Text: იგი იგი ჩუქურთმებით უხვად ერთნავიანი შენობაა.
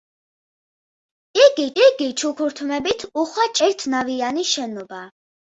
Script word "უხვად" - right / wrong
right